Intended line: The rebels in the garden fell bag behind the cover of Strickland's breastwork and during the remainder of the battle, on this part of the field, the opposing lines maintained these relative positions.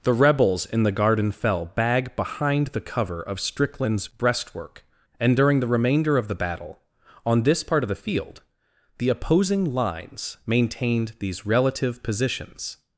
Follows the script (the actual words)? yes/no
yes